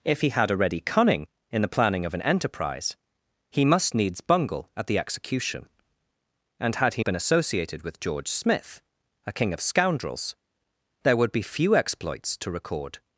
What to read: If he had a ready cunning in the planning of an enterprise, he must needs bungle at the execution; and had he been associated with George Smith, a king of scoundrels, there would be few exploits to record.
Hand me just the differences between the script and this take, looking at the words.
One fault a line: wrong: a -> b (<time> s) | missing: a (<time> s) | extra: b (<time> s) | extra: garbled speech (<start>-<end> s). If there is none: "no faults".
no faults